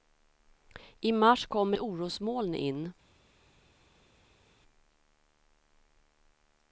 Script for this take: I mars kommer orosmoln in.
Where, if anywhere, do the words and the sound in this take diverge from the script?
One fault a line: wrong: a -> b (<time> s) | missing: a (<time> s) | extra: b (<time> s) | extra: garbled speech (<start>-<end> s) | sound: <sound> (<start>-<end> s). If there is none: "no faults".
no faults